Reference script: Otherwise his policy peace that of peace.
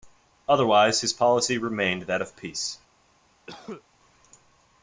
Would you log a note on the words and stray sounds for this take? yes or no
yes